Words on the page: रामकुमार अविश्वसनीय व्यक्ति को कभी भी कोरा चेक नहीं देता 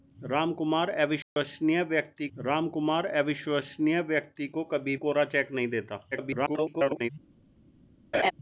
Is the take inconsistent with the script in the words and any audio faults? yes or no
yes